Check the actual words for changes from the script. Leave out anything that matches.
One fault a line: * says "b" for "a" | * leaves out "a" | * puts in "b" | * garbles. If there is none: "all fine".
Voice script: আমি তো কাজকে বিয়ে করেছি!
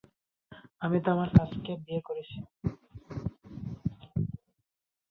* puts in "আমার"